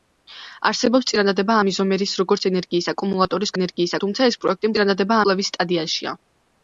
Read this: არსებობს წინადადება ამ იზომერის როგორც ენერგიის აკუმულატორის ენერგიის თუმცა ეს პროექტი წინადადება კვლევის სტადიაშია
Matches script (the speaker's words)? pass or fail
pass